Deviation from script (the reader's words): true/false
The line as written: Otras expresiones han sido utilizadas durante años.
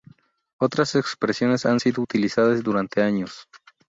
false